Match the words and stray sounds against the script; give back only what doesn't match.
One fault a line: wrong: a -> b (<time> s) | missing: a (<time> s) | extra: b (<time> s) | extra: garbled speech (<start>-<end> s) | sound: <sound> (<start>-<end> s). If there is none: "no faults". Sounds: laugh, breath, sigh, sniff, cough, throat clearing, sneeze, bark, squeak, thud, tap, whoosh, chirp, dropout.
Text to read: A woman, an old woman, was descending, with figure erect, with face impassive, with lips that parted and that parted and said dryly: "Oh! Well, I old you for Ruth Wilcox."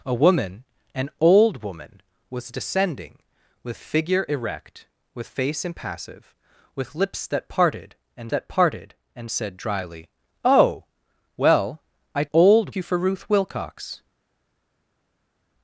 no faults